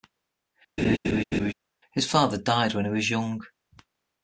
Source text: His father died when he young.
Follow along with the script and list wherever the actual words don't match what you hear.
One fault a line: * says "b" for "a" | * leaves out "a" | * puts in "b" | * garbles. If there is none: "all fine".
* puts in "was"